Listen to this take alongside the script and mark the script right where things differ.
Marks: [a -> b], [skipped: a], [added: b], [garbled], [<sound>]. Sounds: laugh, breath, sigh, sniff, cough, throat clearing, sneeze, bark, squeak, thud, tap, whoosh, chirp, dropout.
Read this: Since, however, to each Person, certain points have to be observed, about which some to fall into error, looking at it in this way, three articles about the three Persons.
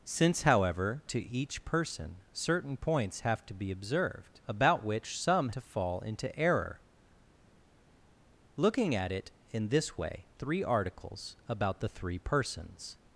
Since, however, to each Person, certain points have to be observed, about which some to fall into error, looking at it in this way, three articles about the three Persons.